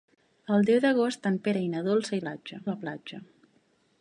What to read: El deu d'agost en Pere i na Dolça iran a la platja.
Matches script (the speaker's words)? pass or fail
fail